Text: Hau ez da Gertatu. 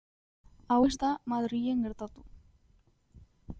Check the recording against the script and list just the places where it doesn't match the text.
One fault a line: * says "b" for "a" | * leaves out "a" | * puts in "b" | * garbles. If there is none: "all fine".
* puts in "Madrilen"